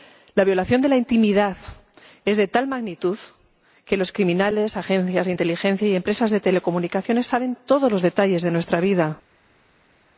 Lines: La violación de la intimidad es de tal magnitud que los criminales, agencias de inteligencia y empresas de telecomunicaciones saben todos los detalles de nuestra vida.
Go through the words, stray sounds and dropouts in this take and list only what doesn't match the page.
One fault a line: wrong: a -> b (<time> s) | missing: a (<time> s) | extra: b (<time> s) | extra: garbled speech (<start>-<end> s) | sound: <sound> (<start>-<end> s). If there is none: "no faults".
no faults